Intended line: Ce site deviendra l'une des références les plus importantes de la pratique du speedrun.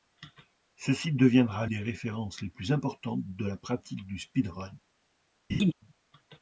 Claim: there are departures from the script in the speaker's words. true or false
true